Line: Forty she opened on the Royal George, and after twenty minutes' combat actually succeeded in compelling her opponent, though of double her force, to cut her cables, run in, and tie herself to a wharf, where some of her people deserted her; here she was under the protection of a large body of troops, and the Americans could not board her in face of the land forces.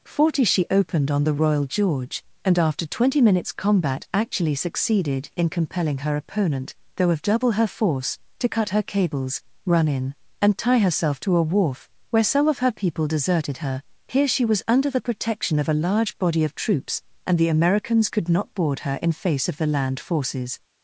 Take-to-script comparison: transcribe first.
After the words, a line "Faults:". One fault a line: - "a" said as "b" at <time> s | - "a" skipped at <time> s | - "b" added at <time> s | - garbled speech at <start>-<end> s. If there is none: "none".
Forty she opened on the Royal George, and after twenty minutes' combat actually succeeded in compelling her opponent, though of double her force, to cut her cables, run in, and tie herself to a wharf, where some of her people deserted her; here she was under the protection of a large body of troops, and the Americans could not board her in face of the land forces.
Faults:
none